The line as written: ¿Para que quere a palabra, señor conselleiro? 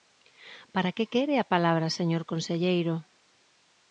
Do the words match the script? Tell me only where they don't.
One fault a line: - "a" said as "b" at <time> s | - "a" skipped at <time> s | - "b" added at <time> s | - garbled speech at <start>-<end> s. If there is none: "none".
none